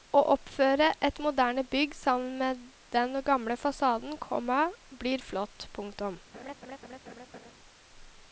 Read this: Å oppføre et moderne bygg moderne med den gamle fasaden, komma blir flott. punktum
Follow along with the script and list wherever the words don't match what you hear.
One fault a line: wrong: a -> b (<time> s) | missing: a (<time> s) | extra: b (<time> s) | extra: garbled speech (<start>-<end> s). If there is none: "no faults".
wrong: moderne -> sammen (2.0 s)